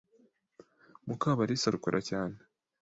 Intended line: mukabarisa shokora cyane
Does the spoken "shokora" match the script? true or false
true